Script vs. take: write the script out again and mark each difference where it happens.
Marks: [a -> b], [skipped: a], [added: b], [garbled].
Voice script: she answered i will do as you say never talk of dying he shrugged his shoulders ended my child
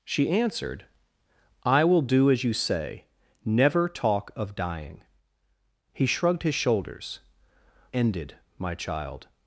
she answered i will do as you say never talk of dying he shrugged his shoulders ended my child